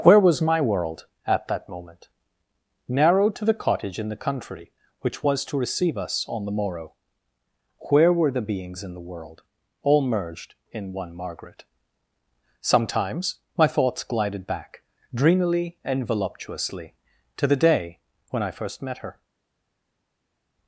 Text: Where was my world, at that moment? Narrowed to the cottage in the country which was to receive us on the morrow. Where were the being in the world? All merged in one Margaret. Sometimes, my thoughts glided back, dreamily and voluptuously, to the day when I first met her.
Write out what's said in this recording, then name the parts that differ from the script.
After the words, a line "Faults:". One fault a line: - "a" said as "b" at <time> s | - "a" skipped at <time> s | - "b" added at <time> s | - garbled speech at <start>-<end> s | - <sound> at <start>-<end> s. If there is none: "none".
Where was my world, at that moment? Narrowed to the cottage in the country which was to receive us on the morrow. Where were the beings in the world? All merged in one Margaret. Sometimes, my thoughts glided back, dreamily and voluptuously, to the day when I first met her.
Faults:
- "being" said as "beings" at 8.4 s